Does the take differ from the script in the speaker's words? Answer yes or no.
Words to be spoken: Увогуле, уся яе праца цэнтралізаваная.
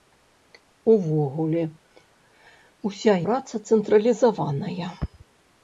yes